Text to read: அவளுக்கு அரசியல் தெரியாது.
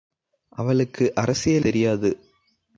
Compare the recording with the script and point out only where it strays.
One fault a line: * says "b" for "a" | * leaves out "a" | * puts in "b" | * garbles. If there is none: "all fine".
all fine